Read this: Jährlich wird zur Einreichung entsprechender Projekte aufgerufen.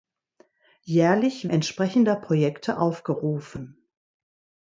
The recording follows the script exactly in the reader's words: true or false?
false